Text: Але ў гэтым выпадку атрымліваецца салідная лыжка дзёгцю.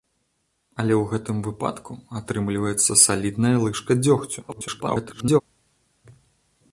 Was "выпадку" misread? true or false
false